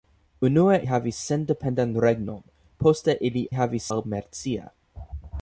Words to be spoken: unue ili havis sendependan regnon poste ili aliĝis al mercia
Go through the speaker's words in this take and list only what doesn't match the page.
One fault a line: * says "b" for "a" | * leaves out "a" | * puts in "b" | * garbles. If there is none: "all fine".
* leaves out "ili"
* says "havis" for "aliĝis"